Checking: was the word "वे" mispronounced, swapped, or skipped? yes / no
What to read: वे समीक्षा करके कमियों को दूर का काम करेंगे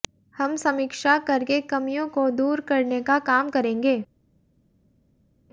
yes